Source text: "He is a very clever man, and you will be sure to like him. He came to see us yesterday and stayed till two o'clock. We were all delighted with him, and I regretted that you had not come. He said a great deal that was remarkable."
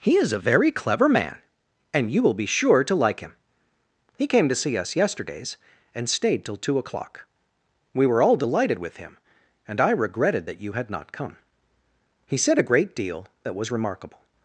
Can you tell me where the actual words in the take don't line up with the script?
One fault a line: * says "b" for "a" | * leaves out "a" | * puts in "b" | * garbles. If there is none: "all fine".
* says "yesterdays" for "yesterday"